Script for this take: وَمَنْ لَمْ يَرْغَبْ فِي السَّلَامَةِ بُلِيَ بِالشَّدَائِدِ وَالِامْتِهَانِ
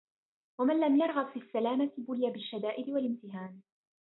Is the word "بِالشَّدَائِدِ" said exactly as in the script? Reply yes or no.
yes